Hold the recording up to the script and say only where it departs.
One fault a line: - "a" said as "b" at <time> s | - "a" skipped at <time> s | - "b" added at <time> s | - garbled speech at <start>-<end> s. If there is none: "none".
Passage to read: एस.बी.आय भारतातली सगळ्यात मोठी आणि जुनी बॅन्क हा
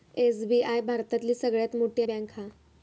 - "आणि जुनी" skipped at 2.0 s